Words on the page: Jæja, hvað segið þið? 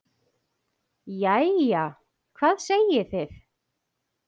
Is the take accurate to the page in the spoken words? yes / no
yes